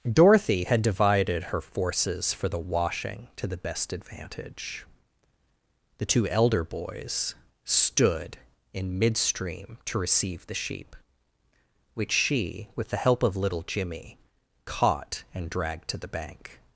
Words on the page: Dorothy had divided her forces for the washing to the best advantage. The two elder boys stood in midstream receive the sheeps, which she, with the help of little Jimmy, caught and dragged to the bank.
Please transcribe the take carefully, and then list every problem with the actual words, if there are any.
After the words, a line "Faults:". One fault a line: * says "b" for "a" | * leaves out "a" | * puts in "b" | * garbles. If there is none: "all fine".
Dorothy had divided her forces for the washing to the best advantage. The two elder boys stood in midstream to receive the sheep, which she, with the help of little Jimmy, caught and dragged to the bank.
Faults:
* puts in "to"
* says "sheep" for "sheeps"